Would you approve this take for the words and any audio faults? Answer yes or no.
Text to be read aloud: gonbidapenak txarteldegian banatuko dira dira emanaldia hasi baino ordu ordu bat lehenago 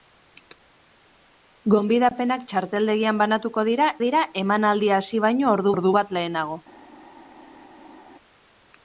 yes